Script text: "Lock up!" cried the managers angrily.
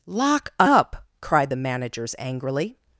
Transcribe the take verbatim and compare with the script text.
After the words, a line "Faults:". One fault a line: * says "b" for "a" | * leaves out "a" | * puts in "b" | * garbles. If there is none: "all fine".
"Lock up!" cried the managers angrily.
Faults:
all fine